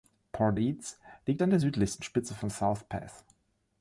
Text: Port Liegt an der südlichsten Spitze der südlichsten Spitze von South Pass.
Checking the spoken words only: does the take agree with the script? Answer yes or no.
no